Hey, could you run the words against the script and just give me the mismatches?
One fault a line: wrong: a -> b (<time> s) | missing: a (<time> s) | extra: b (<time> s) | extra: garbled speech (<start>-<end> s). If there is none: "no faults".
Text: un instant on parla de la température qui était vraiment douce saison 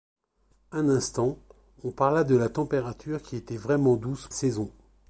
no faults